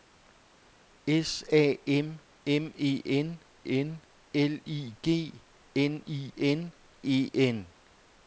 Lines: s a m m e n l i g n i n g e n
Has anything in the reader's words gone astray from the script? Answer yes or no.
yes